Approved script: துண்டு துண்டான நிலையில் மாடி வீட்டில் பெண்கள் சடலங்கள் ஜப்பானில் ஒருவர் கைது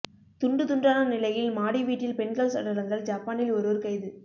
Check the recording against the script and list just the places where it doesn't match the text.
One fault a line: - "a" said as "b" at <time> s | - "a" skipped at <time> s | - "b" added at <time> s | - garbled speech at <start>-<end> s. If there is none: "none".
none